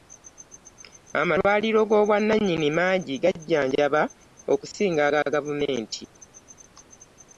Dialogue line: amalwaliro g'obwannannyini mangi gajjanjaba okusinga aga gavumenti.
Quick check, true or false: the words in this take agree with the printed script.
true